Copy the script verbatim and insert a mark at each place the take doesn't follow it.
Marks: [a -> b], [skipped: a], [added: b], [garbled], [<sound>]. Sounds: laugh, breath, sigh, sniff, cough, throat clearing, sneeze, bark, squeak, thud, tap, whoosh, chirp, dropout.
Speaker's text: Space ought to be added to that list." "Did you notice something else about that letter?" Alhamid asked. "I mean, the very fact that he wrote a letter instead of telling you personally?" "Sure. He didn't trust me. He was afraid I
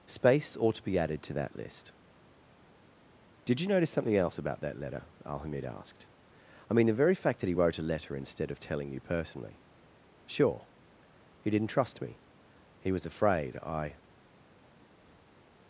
Space ought to be added to that list." "Did you notice something else about that letter?" Alhamid asked. "I mean, the very fact that he wrote a letter instead of telling you personally?" "Sure. He didn't trust me. He was afraid I